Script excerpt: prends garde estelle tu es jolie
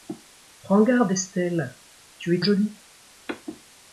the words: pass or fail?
pass